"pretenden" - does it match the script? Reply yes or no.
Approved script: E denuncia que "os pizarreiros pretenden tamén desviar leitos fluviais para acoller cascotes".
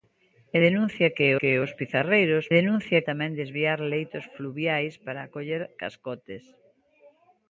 no